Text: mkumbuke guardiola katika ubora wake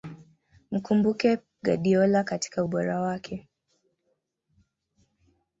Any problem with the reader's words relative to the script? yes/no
no